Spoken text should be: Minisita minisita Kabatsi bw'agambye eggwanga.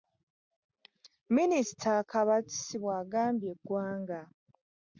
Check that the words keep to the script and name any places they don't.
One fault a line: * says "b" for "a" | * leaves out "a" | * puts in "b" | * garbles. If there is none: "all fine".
* leaves out "minisita"